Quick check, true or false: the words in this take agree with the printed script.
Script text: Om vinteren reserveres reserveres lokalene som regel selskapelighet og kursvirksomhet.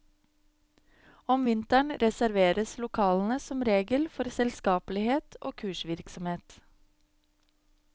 false